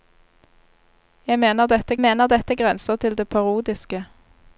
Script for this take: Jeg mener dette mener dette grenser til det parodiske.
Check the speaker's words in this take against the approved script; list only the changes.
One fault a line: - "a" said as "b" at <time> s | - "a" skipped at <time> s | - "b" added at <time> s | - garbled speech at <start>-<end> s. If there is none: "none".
none